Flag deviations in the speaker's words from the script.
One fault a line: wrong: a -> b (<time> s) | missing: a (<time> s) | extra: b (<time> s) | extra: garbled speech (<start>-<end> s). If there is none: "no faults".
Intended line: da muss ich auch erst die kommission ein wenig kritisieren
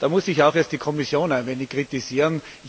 no faults